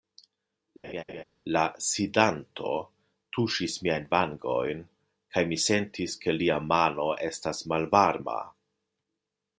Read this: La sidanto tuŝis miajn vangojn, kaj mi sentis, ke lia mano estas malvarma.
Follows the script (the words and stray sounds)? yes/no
no